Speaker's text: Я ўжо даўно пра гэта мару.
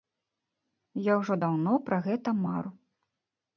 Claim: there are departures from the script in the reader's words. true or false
false